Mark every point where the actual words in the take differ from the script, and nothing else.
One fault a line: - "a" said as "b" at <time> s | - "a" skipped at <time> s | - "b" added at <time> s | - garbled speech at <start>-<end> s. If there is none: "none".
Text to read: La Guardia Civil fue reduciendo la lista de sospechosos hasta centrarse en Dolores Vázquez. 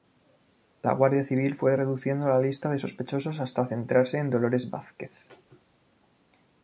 none